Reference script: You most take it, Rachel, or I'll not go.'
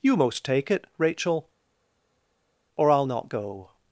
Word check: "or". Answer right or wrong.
right